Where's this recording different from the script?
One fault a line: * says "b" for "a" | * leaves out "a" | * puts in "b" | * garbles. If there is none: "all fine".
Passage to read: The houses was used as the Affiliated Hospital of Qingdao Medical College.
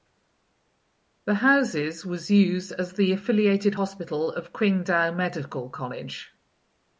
all fine